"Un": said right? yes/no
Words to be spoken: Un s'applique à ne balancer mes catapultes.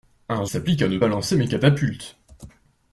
yes